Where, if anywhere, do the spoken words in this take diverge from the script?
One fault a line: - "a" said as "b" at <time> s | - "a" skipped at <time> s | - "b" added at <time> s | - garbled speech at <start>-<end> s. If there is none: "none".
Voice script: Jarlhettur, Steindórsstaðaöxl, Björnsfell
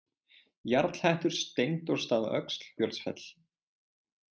none